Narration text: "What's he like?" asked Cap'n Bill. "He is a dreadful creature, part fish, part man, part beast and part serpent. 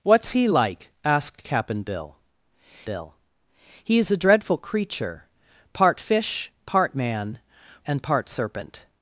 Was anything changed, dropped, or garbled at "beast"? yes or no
yes